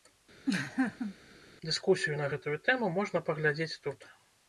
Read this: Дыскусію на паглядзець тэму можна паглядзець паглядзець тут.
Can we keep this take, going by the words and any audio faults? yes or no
no